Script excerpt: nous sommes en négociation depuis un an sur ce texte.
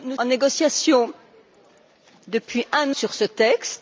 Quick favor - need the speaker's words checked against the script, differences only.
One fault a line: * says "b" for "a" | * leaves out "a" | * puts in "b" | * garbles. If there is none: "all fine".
* leaves out "sommes"
* leaves out "an"